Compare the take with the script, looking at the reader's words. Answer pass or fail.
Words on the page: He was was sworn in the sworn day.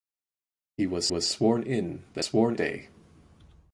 pass